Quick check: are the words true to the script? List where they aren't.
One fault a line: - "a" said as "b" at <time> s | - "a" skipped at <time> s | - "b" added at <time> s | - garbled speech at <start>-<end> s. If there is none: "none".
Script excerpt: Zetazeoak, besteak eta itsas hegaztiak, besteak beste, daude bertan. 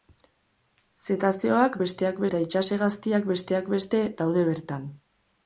none